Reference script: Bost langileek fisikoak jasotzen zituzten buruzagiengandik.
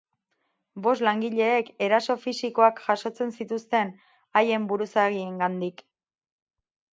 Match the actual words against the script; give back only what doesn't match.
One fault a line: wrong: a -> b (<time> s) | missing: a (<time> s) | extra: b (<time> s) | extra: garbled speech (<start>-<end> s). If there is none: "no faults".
extra: eraso (1.9 s)
extra: haien (4.4 s)